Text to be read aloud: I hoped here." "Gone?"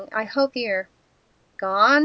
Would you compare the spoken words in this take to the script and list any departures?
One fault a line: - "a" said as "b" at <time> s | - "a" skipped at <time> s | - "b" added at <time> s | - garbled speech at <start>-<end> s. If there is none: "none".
none